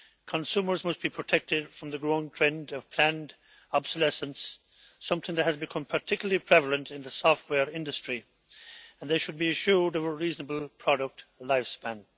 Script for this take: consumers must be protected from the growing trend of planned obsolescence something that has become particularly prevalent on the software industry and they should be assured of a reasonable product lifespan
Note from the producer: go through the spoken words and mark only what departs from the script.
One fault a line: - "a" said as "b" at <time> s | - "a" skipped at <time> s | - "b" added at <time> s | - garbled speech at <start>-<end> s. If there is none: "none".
- "on" said as "in" at 6.9 s